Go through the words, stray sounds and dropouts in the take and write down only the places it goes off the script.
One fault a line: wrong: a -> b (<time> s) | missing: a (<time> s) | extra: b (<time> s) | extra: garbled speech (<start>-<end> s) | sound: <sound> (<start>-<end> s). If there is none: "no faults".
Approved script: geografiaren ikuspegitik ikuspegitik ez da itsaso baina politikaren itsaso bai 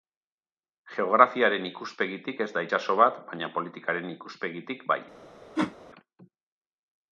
missing: ikuspegitik (2.4 s)
extra: bat (3.0 s)
wrong: itsaso -> ikuspegitik (4.2 s)
sound: whoosh (5.6-5.8 s)